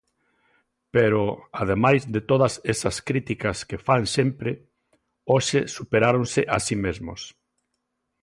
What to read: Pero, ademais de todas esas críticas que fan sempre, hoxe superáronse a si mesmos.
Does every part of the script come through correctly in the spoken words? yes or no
yes